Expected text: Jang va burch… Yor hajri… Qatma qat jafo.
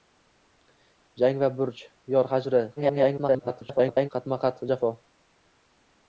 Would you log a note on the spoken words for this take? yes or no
yes